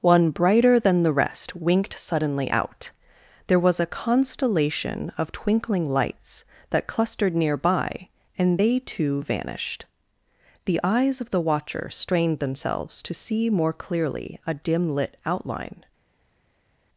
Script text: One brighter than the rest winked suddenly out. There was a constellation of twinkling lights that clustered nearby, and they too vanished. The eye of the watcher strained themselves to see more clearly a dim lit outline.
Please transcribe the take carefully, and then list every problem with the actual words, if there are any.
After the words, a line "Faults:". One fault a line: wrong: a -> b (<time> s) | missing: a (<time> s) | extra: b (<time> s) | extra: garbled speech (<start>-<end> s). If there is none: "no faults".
One brighter than the rest winked suddenly out. There was a constellation of twinkling lights that clustered nearby, and they too vanished. The eyes of the watcher strained themselves to see more clearly a dim lit outline.
Faults:
wrong: eye -> eyes (10.8 s)